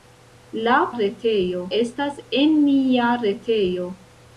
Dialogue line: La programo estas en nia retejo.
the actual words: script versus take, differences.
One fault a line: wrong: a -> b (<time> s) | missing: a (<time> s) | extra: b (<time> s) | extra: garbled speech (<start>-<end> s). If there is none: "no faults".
wrong: programo -> retejo (1.0 s)